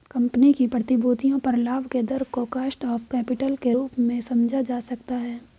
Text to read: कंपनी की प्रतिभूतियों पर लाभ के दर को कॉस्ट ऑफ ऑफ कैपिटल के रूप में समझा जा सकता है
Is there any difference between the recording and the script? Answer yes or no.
yes